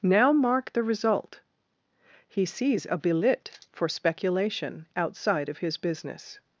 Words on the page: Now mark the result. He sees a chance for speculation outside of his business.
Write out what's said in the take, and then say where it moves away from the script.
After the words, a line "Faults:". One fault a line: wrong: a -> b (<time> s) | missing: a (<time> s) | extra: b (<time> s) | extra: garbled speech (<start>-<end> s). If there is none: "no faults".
Now mark the result. He sees a belit for speculation outside of his business.
Faults:
wrong: chance -> belit (3.0 s)